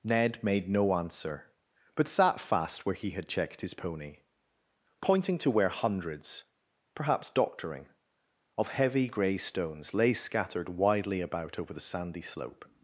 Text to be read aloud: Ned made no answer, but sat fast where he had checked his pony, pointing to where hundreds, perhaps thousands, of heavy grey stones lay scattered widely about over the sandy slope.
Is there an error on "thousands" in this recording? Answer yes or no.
yes